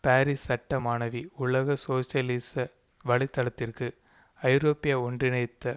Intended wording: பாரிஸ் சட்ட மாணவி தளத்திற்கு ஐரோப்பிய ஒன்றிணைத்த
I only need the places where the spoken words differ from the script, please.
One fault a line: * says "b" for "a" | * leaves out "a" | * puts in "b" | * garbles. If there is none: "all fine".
* puts in "உலக சோசியலிச வலை"